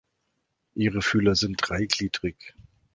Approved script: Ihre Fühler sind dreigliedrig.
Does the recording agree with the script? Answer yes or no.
yes